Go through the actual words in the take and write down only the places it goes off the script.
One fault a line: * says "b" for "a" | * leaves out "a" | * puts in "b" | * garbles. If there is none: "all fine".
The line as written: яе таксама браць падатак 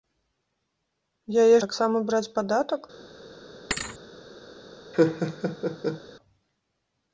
all fine